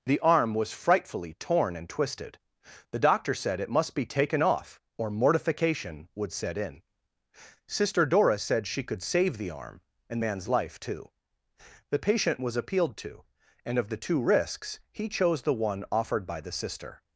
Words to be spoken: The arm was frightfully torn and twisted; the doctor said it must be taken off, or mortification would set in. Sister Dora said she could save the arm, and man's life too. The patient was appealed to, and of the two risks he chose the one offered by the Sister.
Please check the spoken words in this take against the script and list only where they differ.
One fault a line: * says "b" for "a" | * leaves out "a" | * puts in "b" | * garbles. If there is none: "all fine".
all fine